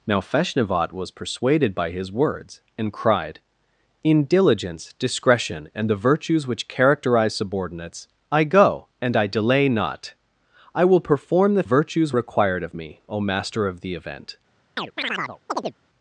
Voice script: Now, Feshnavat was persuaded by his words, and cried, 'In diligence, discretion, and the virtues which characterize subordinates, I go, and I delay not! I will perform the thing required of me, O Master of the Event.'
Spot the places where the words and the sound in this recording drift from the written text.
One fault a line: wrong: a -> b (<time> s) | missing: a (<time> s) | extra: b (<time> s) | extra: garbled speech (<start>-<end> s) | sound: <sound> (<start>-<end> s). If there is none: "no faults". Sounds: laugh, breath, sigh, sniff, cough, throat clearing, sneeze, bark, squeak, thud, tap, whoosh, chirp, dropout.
wrong: thing -> virtues (11.6 s)
sound: chirp (14.8-15.7 s)